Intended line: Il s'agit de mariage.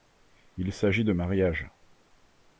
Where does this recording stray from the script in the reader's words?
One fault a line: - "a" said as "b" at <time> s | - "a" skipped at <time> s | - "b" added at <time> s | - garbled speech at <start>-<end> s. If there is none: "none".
none